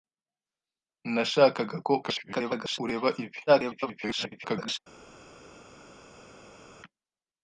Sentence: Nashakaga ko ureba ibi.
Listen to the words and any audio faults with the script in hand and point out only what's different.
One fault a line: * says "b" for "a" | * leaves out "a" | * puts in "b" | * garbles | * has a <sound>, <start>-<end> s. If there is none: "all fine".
* garbles
* garbles